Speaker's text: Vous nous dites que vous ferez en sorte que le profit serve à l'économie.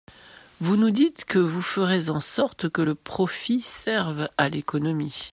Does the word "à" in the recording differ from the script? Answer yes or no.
no